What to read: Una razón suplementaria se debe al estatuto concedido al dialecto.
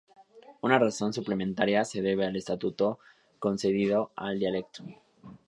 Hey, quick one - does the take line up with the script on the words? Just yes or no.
yes